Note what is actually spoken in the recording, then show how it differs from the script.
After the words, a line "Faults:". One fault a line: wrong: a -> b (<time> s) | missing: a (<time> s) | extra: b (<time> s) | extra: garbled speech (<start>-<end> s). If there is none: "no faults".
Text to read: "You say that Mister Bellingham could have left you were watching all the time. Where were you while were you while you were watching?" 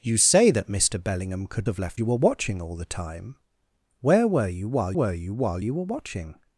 "You say that Mister Bellingham could have left you were watching all the time. Where were you while were you while you were watching?"
Faults:
no faults